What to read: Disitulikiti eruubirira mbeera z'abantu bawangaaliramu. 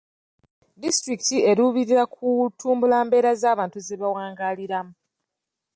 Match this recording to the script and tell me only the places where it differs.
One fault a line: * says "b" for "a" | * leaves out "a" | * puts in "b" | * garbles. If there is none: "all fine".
* puts in "kutumbula"
* puts in "ze"